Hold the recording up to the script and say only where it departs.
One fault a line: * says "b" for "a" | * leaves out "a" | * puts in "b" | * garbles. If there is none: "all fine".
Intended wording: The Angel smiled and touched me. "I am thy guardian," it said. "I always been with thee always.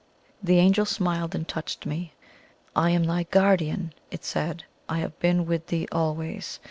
* says "have" for "always"